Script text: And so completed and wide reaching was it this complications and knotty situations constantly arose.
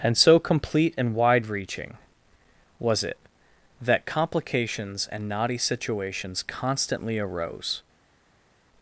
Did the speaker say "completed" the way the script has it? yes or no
no